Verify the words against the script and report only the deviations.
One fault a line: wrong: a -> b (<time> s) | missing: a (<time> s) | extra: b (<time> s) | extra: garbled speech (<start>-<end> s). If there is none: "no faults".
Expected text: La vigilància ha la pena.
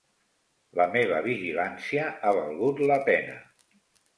extra: meva (0.9 s)
extra: valgut (2.4 s)